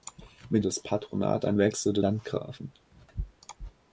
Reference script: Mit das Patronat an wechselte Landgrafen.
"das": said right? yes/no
yes